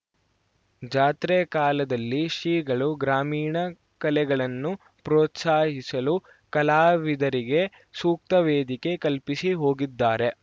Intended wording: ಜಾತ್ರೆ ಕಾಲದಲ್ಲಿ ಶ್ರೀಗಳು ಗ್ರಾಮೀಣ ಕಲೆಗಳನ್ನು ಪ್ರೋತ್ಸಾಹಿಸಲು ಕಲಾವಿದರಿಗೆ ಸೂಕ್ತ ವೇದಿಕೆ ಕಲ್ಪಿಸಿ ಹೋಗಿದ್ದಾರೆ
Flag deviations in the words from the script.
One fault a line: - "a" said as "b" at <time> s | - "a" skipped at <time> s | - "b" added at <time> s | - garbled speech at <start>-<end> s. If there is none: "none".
none